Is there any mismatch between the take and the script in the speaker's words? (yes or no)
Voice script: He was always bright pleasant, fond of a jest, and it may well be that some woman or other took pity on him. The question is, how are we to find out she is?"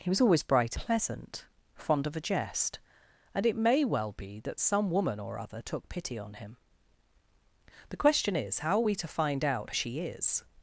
no